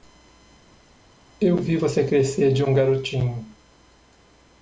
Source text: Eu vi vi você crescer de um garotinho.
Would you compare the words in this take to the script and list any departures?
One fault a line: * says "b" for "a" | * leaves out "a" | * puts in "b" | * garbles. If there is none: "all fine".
* leaves out "vi"